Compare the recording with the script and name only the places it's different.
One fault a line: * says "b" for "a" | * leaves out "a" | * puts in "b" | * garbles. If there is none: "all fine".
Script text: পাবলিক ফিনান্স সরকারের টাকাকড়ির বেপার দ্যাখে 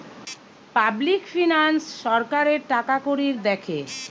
* leaves out "বেপার"